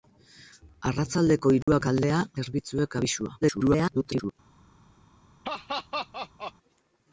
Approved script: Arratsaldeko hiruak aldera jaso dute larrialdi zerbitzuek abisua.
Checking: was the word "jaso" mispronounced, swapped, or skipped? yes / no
yes